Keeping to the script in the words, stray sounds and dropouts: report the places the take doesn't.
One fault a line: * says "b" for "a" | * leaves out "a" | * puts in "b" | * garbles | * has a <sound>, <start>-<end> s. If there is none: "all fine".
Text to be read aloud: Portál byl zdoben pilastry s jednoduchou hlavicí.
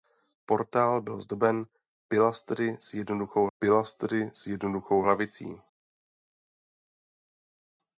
* puts in "pilastry s jednoduchou"